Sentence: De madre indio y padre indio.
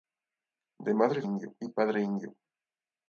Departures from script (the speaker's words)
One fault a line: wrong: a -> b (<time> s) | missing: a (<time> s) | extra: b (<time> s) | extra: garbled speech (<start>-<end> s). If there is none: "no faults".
no faults